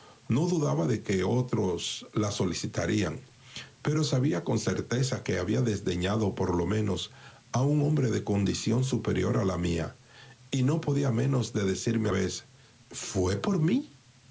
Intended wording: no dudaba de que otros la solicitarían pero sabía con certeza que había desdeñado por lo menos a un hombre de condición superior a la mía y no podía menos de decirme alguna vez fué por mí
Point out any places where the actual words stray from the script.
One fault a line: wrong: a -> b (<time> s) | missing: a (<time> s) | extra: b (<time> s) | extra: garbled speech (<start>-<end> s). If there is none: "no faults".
missing: alguna (12.1 s)